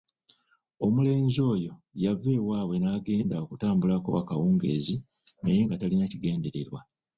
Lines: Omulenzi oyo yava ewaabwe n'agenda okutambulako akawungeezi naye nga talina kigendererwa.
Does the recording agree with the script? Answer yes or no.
yes